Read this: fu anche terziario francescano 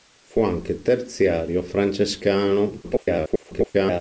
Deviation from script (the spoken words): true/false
true